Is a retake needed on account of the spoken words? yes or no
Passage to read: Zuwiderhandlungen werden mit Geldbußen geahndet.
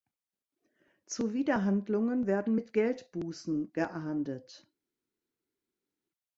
no